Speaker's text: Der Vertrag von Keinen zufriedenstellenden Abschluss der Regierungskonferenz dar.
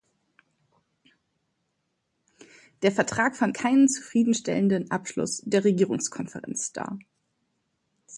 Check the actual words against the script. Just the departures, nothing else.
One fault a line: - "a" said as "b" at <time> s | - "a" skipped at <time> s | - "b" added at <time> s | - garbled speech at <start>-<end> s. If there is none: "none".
none